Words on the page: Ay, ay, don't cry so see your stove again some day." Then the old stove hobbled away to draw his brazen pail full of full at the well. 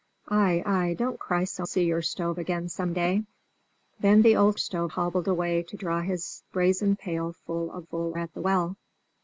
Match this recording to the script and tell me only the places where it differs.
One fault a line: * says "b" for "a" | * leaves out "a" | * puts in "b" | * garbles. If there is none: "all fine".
all fine